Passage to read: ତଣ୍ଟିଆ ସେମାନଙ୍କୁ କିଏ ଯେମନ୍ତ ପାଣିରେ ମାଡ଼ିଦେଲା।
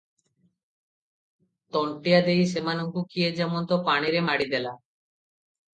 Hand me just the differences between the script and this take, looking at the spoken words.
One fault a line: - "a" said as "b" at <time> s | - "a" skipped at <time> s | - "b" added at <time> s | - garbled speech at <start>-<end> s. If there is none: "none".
- "ଦେଇ" added at 2.2 s